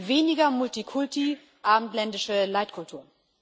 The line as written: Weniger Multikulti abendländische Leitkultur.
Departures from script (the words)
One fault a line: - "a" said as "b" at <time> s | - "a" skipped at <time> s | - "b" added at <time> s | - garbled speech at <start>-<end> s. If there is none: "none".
none